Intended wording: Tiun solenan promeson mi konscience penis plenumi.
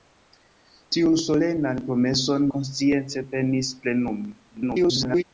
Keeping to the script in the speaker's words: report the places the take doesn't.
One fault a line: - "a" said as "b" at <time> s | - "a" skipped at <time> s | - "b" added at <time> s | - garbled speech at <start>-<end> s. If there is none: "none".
- "mi" skipped at 2.5 s
- garbled speech at 4.5-5.2 s